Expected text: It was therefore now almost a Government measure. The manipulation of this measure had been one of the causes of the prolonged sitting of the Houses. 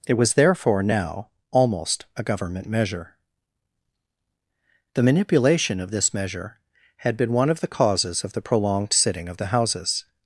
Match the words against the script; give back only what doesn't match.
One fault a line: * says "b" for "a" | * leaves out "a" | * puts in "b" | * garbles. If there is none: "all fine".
all fine